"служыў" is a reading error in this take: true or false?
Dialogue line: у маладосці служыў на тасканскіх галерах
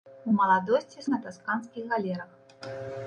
true